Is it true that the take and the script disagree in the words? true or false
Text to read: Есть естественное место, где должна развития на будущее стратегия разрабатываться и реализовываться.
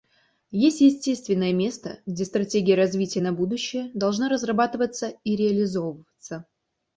true